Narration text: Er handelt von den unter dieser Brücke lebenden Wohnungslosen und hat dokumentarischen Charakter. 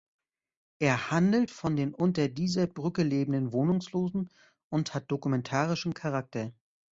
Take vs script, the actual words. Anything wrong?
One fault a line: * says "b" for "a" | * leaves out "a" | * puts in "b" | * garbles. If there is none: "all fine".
all fine